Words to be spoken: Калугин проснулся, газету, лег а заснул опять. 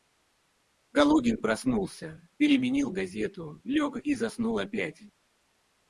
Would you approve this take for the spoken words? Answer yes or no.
no